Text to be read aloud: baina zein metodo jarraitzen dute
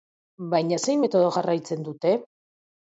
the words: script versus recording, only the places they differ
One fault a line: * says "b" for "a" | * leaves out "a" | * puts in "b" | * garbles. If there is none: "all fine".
all fine